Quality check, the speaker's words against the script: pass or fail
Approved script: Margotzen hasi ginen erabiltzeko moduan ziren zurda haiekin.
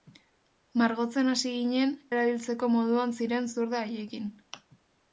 pass